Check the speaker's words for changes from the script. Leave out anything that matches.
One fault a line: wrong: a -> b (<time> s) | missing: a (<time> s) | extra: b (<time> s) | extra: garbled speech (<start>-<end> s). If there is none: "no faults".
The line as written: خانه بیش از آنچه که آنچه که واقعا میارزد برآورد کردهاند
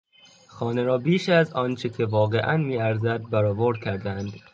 extra: را (0.8 s)
missing: آنچه که (2.0 s)